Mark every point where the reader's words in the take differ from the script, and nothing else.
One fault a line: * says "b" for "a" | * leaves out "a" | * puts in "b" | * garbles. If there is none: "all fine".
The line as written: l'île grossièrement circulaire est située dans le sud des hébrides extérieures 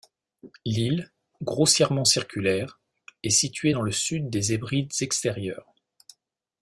all fine